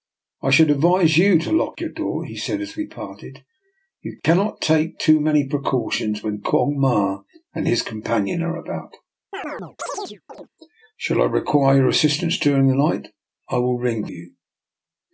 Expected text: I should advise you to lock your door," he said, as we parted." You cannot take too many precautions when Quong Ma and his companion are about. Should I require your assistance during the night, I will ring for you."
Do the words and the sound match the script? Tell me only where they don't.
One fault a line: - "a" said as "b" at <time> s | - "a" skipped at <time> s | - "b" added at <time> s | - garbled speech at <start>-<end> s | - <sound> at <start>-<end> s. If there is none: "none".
- chirp at 9.3-10.5 s
- "for" skipped at 14.0 s